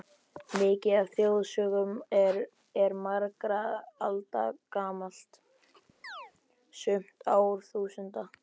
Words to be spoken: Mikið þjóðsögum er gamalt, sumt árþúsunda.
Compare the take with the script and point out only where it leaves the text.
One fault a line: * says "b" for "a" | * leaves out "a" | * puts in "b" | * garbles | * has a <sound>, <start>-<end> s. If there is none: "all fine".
* puts in "af"
* puts in "margra alda"
* has a chirp, 6.0-6.3 s